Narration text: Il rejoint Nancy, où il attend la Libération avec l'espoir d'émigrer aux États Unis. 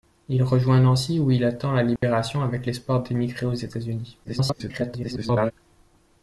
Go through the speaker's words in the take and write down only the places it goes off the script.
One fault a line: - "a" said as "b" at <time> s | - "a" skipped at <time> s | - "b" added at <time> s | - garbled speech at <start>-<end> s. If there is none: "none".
- garbled speech at 4.2-5.5 s